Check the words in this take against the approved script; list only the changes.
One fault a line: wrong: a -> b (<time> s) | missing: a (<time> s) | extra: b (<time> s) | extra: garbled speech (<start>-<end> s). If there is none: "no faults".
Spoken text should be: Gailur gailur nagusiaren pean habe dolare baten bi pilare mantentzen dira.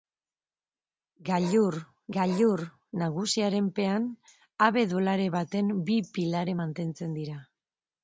no faults